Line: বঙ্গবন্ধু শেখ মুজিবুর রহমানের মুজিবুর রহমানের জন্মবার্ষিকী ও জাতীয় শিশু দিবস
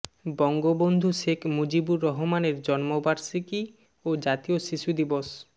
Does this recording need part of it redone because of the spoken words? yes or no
yes